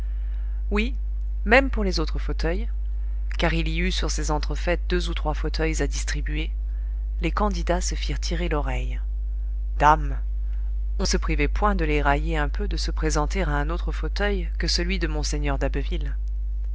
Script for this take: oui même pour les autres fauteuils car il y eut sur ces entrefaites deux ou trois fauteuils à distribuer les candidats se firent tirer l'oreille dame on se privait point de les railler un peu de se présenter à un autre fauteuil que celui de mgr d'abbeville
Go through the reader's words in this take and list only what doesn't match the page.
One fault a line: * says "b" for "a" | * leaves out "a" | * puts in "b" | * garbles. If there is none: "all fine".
all fine